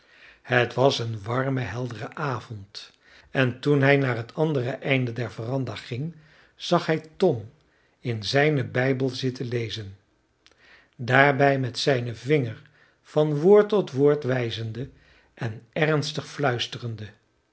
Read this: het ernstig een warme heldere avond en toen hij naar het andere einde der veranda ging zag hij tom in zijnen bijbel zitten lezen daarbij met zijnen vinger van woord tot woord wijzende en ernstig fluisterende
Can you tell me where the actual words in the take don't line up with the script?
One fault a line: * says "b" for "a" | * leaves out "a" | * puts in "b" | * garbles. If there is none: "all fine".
* says "was" for "ernstig"